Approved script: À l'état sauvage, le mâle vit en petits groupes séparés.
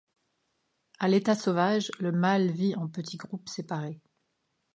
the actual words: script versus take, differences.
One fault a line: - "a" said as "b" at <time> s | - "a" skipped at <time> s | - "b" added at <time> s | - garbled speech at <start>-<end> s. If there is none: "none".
none